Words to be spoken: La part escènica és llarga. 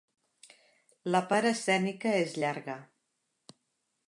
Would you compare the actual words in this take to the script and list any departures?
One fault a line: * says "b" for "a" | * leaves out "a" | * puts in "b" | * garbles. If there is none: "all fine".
all fine